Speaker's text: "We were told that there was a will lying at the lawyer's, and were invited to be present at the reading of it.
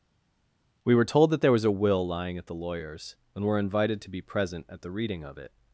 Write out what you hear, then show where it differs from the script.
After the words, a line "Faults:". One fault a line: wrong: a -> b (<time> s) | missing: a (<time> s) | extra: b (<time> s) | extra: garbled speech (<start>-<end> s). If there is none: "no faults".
"We were told that there was a will lying at the lawyer's, and were invited to be present at the reading of it.
Faults:
no faults